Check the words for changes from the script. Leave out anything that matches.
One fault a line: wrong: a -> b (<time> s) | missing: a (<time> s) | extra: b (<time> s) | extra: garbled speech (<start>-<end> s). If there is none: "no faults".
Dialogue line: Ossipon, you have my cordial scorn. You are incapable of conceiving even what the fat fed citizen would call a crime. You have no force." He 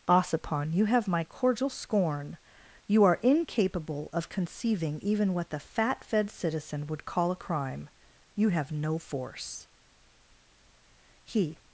no faults